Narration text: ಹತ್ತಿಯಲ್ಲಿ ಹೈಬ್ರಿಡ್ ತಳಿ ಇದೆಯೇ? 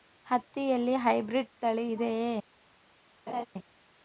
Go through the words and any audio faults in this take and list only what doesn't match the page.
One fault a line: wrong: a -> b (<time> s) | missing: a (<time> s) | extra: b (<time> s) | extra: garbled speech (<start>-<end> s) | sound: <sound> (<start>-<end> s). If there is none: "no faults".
sound: laugh (3.3-3.5 s)